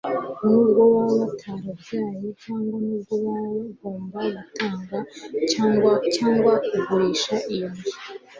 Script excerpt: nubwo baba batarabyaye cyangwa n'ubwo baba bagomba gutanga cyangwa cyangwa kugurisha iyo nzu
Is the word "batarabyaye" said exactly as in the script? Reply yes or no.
yes